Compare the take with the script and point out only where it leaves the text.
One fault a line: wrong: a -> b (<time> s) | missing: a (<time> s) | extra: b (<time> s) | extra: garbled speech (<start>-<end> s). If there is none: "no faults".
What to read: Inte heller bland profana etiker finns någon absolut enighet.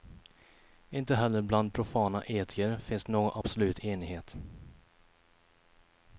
no faults